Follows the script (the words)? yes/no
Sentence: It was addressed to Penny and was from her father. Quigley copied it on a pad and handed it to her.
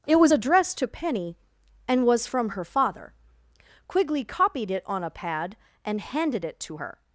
yes